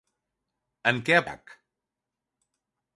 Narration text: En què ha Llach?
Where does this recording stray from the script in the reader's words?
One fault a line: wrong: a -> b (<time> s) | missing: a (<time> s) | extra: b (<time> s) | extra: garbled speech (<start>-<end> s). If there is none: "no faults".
no faults